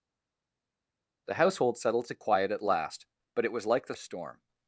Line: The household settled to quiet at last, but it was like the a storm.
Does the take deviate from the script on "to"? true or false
false